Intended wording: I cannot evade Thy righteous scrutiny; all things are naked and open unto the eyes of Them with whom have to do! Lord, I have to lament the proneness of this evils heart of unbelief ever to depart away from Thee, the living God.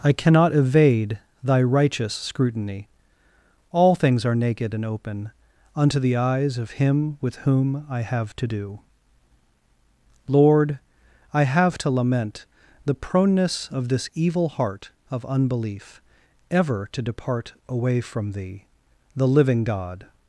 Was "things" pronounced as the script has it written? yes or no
yes